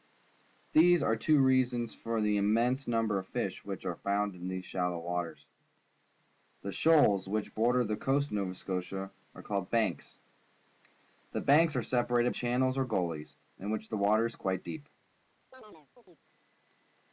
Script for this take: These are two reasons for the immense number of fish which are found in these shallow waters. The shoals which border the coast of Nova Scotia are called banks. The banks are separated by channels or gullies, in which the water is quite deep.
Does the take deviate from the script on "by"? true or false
true